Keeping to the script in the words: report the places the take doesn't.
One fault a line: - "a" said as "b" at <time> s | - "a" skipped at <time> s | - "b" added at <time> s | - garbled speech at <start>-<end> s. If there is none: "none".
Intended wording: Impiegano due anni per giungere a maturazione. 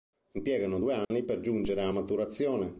none